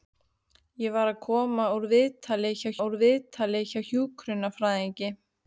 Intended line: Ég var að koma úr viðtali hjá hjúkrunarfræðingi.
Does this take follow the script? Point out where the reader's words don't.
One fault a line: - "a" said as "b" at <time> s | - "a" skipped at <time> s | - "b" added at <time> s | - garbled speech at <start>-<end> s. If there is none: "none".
- "úr viðtali hjá" added at 2.8 s